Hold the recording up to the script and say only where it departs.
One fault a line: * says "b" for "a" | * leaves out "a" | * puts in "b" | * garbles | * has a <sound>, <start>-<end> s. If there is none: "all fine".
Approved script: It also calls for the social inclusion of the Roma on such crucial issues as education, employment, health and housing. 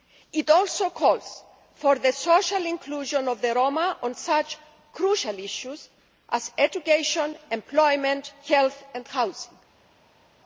all fine